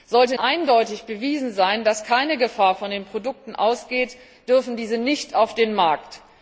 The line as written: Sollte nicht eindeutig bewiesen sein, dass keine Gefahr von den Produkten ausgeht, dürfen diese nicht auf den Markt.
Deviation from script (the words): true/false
true